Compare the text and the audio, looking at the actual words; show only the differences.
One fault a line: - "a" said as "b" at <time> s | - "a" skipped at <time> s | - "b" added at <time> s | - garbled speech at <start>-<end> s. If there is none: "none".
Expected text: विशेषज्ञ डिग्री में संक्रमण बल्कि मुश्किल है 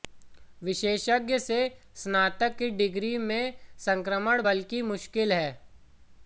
- "से स्नातक की" added at 1.4 s